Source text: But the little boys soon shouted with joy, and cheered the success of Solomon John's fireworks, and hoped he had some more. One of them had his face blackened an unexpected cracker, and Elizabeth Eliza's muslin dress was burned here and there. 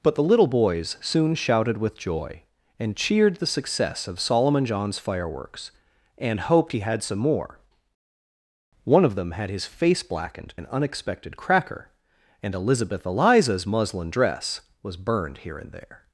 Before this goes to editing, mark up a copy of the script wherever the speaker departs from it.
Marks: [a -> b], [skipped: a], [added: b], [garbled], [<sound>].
But the little boys soon shouted with joy, and cheered the success of Solomon John's fireworks, and hoped he had some more. One of them had his face blackened an unexpected cracker, and Elizabeth Eliza's muslin dress was burned here and there.